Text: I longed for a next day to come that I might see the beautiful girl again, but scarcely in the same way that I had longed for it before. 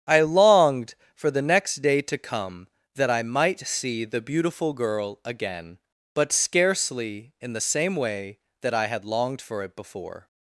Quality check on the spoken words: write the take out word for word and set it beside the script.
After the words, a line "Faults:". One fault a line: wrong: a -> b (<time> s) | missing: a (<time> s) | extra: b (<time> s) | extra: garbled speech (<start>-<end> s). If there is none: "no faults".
I longed for the next day to come that I might see the beautiful girl again, but scarcely in the same way that I had longed for it before.
Faults:
wrong: a -> the (1.3 s)